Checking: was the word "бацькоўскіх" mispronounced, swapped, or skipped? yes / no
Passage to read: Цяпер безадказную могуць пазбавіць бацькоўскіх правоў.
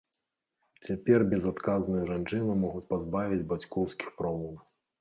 no